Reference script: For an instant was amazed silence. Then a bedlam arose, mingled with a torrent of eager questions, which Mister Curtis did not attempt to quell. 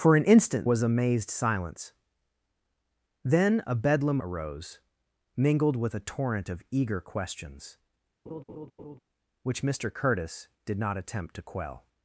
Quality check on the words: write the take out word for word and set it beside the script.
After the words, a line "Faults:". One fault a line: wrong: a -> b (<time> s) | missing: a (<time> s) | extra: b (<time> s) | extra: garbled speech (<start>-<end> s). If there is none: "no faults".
For an instant was amazed silence. Then a bedlam arose, mingled with a torrent of eager questions, which Mister Curtis did not attempt to quell.
Faults:
no faults